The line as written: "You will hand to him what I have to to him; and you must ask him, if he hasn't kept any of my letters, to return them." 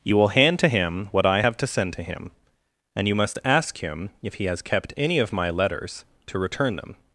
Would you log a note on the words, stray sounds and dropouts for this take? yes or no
yes